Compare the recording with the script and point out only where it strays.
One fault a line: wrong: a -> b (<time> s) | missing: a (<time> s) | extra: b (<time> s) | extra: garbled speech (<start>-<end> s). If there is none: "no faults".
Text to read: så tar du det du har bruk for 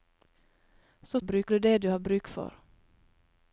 wrong: tar -> bruk (1.2 s)